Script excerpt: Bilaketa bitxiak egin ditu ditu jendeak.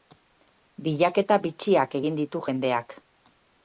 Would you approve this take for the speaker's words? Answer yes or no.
no